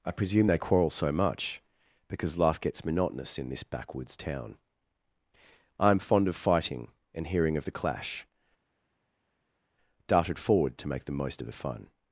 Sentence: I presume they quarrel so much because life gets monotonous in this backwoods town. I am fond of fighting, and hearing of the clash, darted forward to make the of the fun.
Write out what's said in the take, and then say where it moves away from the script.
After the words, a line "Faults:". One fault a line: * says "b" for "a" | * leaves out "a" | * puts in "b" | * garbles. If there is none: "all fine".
I presume they quarrel so much because life gets monotonous in this backwoods town. I am fond of fighting, and hearing of the clash, darted forward to make the most of the fun.
Faults:
* puts in "most"